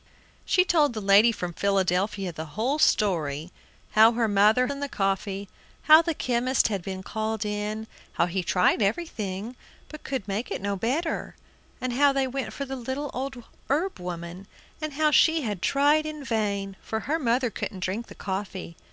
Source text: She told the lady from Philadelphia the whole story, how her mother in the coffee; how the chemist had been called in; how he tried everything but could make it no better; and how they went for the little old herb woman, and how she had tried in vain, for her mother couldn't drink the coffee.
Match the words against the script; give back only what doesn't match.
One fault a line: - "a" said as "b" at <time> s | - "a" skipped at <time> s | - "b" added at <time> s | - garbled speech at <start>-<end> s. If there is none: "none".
none